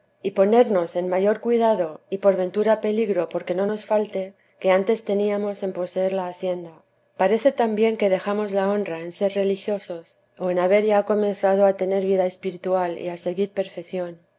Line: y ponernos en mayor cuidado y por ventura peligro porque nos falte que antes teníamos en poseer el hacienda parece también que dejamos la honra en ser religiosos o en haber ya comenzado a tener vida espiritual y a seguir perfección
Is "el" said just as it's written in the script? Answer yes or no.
no